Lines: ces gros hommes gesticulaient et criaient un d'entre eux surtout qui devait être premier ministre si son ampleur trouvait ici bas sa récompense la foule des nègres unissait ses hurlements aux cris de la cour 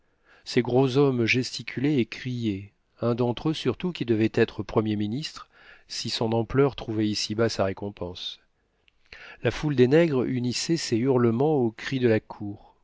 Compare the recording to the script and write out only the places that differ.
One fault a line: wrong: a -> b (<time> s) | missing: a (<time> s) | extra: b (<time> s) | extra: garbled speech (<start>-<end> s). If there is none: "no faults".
no faults